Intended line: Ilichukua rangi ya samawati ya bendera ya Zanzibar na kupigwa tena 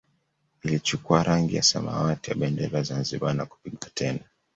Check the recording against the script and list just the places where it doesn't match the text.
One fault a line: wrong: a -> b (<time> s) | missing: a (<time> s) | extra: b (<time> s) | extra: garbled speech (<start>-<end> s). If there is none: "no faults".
no faults